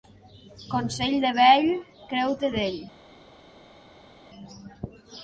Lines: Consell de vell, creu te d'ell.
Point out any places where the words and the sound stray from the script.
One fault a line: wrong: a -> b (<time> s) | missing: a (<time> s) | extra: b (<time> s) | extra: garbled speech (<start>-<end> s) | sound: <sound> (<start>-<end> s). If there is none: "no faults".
no faults